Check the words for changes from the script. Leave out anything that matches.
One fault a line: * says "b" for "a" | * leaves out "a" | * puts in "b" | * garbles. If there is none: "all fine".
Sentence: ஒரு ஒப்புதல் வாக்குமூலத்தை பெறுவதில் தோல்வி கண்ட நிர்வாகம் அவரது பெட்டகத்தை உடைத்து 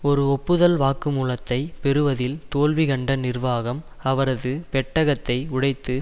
all fine